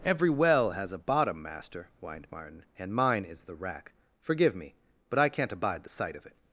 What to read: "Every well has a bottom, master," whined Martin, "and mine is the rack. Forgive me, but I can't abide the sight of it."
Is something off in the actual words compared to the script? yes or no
no